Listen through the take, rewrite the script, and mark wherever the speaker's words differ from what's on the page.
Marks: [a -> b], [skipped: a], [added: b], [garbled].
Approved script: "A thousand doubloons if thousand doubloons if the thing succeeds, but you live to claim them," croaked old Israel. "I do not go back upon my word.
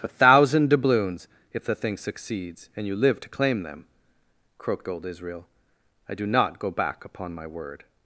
"A thousand doubloons if [skipped: thousand doubloons if] the thing succeeds, [but -> and] you live to claim them," croaked old Israel. "I do not go back upon my word.